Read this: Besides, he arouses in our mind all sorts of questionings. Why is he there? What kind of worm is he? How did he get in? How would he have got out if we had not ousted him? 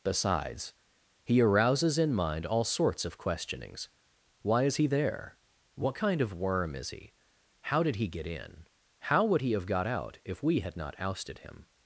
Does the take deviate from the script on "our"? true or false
true